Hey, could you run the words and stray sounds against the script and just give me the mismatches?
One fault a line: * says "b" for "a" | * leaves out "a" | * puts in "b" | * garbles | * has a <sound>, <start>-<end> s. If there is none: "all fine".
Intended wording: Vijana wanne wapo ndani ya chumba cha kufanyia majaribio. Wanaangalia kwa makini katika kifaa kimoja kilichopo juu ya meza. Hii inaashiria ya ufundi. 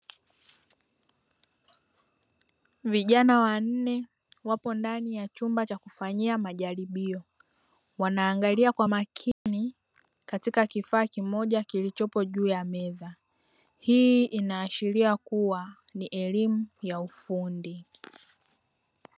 * has a dropout, 9.3-9.5 s
* puts in "kuwa ni elimu"